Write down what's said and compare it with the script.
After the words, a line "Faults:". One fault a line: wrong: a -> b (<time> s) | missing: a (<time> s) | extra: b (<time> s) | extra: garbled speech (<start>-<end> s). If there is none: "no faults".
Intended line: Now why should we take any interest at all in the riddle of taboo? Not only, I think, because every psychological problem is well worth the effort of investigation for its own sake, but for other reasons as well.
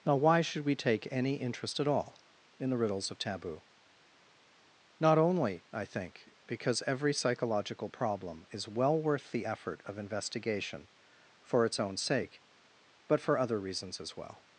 Now why should we take any interest at all in the riddles of taboo? Not only, I think, because every psychological problem is well worth the effort of investigation for its own sake, but for other reasons as well.
Faults:
wrong: riddle -> riddles (2.8 s)